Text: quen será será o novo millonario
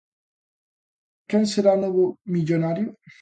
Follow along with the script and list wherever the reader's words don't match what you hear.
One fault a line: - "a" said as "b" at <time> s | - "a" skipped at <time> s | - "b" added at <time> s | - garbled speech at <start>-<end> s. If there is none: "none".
- "será" skipped at 1.7 s